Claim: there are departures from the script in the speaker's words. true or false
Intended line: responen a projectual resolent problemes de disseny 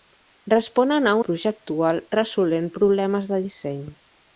false